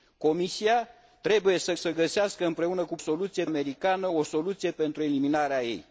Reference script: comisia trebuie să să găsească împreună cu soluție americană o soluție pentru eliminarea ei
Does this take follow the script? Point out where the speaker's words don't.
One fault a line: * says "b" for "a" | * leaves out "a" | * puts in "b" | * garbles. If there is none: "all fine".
all fine